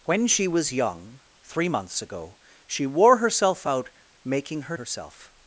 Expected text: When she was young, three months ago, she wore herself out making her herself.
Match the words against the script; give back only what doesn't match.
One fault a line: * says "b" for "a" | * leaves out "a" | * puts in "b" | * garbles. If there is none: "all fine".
all fine